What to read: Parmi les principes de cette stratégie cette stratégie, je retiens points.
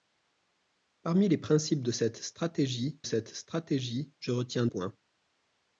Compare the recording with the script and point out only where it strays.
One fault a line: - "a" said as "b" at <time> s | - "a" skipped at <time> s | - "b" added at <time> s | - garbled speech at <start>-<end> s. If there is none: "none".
none